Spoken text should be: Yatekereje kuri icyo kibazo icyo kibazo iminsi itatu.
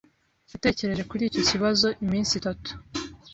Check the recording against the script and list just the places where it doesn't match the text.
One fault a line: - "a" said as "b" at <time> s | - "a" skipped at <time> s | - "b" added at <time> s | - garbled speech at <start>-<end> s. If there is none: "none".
- "icyo kibazo" skipped at 1.9 s